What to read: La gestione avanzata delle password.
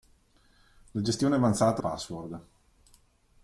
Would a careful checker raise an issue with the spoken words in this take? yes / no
yes